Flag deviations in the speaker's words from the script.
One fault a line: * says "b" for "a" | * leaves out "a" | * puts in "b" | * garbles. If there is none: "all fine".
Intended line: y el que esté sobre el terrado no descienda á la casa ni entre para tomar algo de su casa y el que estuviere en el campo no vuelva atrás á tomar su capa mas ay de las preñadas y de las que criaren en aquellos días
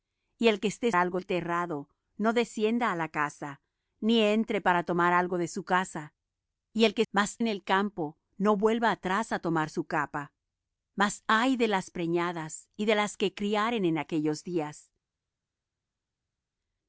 * says "algo" for "sobre"
* says "mas" for "estuviere"